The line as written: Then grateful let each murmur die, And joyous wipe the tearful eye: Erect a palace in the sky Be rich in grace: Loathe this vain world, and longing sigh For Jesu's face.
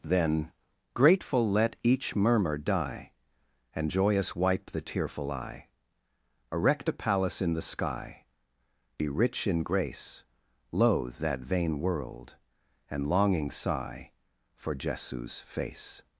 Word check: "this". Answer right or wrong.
wrong